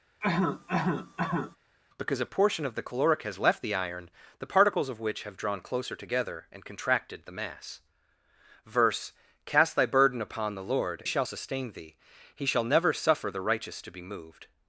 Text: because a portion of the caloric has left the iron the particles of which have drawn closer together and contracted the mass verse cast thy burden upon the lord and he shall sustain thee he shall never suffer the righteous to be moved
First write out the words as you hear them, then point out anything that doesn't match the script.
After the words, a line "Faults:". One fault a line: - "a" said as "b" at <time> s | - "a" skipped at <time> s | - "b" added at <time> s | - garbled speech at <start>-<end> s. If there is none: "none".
because a portion of the caloric has left the iron the particles of which have drawn closer together and contracted the mass verse cast thy burden upon the lord shall sustain thee he shall never suffer the righteous to be moved
Faults:
- "and he" skipped at 11.0 s